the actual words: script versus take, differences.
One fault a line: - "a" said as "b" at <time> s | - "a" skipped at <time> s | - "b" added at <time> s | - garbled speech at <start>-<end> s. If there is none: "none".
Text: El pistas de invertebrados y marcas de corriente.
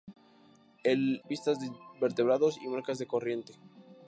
none